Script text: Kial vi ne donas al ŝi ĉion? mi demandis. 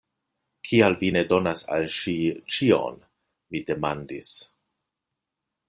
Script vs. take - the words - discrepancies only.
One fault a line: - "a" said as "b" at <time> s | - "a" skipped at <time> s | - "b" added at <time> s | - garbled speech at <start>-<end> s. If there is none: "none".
none